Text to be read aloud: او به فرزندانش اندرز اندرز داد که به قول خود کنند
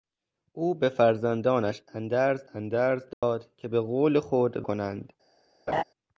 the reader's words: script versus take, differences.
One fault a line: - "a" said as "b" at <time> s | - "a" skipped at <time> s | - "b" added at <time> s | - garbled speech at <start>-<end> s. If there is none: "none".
none